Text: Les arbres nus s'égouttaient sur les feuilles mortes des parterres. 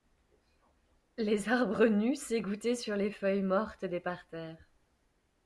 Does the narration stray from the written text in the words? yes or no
no